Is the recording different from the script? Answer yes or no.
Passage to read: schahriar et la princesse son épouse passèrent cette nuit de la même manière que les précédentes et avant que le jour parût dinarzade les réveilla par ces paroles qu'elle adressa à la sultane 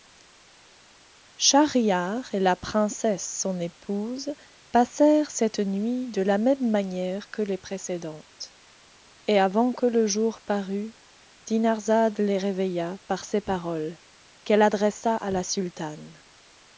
no